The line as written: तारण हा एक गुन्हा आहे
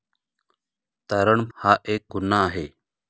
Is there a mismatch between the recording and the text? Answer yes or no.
no